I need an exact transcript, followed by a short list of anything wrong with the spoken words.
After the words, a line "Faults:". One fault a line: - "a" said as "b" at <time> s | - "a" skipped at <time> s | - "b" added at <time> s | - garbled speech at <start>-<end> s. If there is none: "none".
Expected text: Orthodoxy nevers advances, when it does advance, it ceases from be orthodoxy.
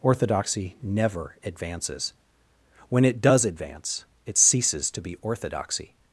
Orthodoxy never advances, when it does advance, it ceases to be orthodoxy.
Faults:
- "nevers" said as "never" at 0.8 s
- "from" said as "to" at 4.9 s